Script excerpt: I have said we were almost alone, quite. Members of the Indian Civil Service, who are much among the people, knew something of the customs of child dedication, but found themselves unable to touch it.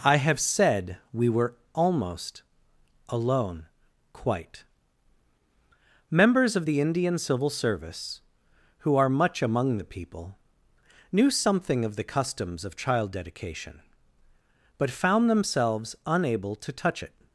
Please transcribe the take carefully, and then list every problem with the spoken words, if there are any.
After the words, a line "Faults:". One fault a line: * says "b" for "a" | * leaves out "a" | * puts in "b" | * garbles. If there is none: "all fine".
I have said we were almost alone, quite. Members of the Indian Civil Service, who are much among the people, knew something of the customs of child dedication, but found themselves unable to touch it.
Faults:
all fine